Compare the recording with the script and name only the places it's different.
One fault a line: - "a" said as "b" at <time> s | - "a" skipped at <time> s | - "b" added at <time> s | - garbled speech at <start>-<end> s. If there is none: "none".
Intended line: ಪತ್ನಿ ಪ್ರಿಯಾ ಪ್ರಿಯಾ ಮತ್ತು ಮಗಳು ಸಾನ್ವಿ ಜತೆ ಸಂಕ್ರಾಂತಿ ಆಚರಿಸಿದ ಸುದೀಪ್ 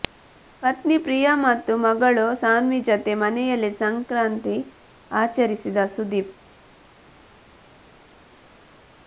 - "ಪ್ರಿಯಾ" skipped at 1.3 s
- "ಮನೆಯಲ್ಲಿ" added at 3.2 s